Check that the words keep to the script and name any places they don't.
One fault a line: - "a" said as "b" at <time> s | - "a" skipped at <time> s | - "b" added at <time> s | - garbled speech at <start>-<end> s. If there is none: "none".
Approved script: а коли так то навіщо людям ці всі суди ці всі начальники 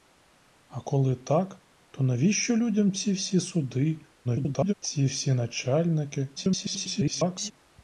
- garbled speech at 4.2-4.7 s
- garbled speech at 6.4-7.5 s